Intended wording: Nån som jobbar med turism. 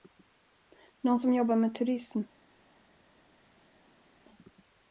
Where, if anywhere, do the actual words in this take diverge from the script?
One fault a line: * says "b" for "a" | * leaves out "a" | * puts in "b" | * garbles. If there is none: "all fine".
all fine